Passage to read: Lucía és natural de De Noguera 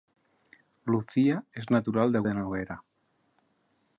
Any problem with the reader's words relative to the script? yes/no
no